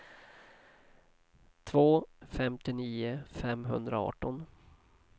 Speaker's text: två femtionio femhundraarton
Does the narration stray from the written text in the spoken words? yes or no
no